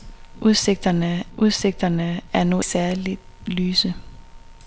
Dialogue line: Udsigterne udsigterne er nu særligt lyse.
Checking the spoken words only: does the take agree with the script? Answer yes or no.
yes